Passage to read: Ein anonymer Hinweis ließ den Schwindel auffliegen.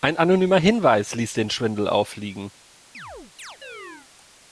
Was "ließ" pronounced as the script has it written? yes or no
yes